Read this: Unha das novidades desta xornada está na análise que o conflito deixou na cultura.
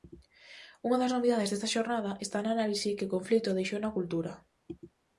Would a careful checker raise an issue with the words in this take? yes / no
no